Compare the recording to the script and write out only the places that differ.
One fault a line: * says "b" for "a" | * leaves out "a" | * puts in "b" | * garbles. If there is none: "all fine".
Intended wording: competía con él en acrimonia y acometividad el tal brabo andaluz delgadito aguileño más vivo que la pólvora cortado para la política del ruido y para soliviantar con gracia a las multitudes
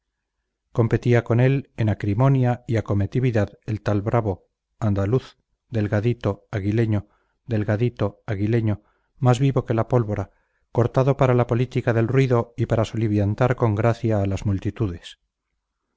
* puts in "delgadito aguileño"